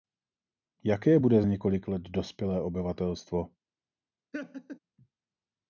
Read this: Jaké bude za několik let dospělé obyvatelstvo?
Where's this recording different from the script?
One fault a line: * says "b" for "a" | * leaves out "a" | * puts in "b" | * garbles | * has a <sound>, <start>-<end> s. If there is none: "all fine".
* leaves out "za"
* has a laugh, 4.3-4.8 s